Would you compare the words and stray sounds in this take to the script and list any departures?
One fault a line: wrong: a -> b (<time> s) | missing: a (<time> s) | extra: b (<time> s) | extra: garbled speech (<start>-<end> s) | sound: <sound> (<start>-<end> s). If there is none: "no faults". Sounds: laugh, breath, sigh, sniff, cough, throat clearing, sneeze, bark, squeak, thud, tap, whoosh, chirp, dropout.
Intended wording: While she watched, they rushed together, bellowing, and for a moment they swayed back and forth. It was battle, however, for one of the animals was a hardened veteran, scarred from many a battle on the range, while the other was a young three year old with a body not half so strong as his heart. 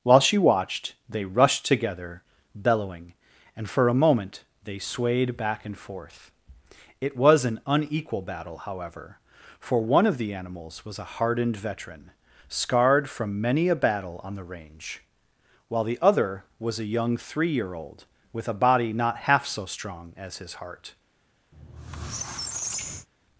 extra: an unequal (7.5 s)
sound: squeak (21.5-23.1 s)